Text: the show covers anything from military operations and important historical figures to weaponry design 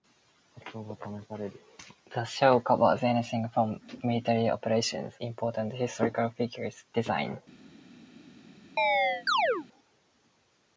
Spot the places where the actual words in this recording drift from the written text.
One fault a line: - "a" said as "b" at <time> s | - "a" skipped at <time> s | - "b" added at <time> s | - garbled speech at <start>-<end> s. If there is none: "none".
- "and" skipped at 5.1 s
- "to weaponry" skipped at 6.8 s